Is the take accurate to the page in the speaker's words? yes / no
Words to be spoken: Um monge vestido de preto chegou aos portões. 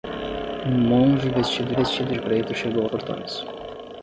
no